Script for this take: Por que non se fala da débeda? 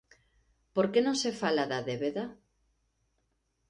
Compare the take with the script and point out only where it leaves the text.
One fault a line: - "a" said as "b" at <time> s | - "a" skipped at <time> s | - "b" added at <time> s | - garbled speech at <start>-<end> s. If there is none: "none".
none